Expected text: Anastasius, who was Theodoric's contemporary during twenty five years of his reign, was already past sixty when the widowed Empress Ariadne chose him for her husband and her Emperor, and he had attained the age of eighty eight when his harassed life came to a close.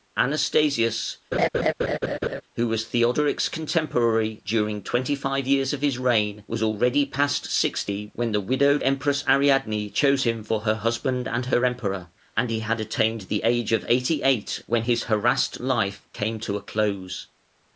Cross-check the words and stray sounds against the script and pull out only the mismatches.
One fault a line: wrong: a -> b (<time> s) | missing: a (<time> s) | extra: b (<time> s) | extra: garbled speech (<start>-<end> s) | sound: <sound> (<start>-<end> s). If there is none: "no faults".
sound: laugh (1.3-2.4 s)